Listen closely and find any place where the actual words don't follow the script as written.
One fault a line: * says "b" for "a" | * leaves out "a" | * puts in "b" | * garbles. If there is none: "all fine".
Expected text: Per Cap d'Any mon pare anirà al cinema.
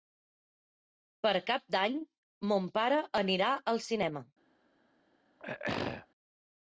all fine